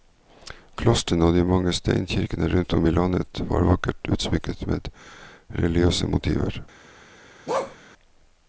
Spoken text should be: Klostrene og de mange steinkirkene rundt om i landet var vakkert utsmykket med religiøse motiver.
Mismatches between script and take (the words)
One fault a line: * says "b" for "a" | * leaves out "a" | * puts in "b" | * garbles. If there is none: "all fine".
all fine